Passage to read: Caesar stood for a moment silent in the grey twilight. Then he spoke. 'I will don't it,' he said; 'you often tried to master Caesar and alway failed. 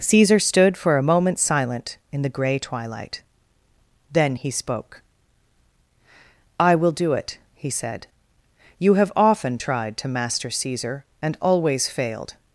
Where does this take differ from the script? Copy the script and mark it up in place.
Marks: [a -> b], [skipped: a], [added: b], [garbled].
Caesar stood for a moment silent in the grey twilight. Then he spoke. 'I will [don't -> do] it,' he said; 'you [added: have] often tried to master Caesar and [alway -> always] failed.